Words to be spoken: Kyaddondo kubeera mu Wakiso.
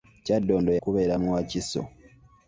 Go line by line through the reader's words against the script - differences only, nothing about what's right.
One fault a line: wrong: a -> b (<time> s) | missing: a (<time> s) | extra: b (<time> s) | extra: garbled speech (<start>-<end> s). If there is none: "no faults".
no faults